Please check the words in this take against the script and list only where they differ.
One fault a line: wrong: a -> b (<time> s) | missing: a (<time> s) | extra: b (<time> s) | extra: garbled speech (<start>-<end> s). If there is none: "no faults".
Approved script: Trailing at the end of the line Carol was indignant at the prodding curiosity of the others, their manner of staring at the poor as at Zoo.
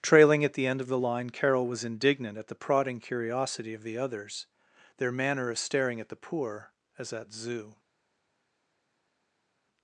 no faults